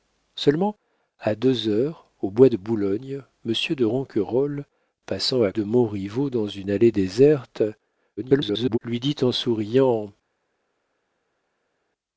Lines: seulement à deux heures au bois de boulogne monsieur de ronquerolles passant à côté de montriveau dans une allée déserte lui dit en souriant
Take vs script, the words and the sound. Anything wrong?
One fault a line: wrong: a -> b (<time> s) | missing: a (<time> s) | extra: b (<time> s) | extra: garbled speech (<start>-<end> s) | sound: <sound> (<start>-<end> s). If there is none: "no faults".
missing: côté (5.5 s)
extra: garbled speech (8.2-8.8 s)